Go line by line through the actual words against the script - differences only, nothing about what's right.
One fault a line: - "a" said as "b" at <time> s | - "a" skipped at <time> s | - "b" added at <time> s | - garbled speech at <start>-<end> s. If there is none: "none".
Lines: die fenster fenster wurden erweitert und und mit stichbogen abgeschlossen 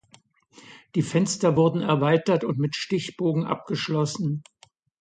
- "fenster" skipped at 1.6 s
- "und" skipped at 2.6 s